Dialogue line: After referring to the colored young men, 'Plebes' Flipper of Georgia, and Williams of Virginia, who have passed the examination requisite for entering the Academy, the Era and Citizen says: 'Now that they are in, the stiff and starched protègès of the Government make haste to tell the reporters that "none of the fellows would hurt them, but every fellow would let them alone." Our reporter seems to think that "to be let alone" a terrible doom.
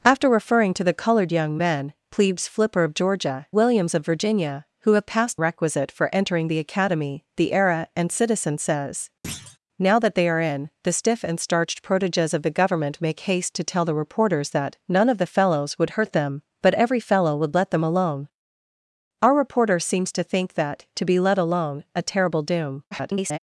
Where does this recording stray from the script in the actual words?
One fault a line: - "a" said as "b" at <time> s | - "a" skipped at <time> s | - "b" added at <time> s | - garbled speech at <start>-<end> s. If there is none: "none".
- "and" skipped at 3.5 s
- "the examination" skipped at 5.4 s
- garbled speech at 22.9-23.4 s